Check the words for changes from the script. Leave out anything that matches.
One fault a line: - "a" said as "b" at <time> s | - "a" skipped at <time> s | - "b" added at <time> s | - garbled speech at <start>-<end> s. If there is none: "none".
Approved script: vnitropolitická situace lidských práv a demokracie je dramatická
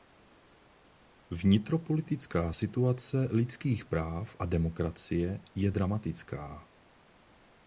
none